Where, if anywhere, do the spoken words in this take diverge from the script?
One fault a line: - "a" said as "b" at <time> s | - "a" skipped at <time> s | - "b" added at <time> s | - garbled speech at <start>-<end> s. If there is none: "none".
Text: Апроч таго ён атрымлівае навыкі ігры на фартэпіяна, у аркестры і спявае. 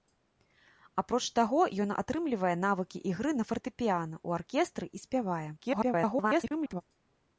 - garbled speech at 5.6-6.8 s